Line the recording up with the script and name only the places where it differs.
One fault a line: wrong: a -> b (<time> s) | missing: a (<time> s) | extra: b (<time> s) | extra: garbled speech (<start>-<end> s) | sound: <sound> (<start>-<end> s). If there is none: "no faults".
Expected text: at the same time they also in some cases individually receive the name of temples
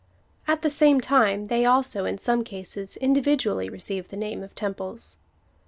no faults